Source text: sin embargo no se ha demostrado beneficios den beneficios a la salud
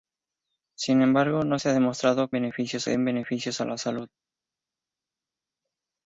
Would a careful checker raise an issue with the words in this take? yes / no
no